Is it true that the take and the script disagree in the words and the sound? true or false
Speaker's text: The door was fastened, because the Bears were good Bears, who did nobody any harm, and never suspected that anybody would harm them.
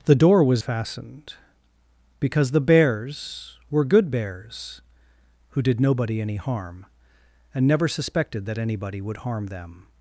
false